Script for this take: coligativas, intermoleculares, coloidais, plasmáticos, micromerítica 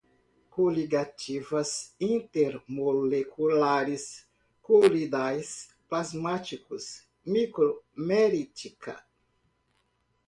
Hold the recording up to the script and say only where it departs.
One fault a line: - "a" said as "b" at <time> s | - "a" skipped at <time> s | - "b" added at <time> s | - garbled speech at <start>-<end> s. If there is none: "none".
none